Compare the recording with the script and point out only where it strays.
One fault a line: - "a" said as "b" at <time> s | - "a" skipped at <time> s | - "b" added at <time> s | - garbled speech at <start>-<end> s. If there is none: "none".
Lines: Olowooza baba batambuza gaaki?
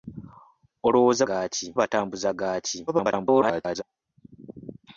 - "baba" said as "gaaki" at 1.3 s
- garbled speech at 2.9-3.8 s